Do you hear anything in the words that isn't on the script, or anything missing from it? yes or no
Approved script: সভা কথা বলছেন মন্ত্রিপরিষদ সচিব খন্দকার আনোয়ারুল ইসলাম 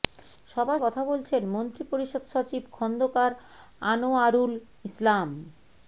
no